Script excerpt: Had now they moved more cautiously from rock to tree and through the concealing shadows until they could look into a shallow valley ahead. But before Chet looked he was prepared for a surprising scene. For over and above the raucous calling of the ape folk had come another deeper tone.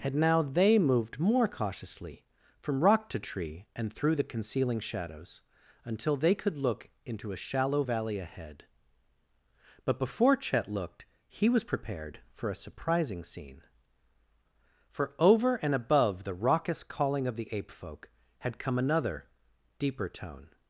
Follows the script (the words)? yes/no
yes